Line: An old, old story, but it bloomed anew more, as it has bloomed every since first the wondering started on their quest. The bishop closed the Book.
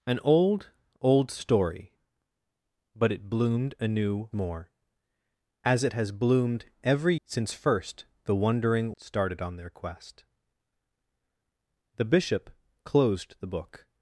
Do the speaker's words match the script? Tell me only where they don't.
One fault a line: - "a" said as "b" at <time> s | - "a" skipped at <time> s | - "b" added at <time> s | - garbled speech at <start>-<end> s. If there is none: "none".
none